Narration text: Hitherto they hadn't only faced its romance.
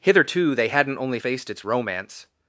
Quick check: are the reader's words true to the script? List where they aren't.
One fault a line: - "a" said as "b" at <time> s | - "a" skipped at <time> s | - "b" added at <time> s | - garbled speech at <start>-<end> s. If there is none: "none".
none